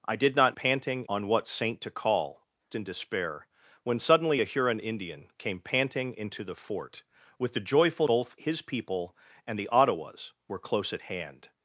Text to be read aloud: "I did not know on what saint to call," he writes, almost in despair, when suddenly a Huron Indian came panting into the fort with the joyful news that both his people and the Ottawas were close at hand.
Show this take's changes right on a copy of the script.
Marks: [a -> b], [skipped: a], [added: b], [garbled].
"I did not [know -> panting] on what saint to call," [skipped: he writes, almost] in despair, when suddenly a Huron Indian came panting into the fort with the joyful [skipped: news that] both his people and the Ottawas were close at hand.